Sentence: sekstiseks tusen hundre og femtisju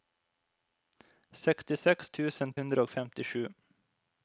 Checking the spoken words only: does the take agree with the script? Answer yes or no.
yes